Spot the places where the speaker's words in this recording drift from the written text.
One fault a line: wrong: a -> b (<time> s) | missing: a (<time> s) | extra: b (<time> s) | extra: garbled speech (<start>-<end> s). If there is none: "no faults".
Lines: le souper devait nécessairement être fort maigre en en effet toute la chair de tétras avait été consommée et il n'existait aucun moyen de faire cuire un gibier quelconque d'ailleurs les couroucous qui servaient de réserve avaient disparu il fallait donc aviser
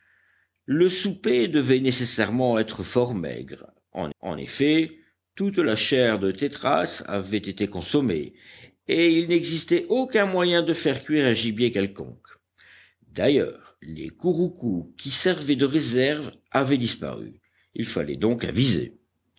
no faults